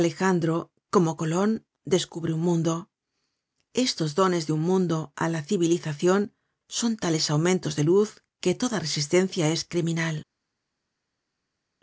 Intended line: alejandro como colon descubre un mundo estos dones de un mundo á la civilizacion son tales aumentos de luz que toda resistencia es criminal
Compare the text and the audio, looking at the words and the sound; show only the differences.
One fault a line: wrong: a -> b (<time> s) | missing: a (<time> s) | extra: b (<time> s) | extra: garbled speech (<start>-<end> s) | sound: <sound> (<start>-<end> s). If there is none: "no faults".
no faults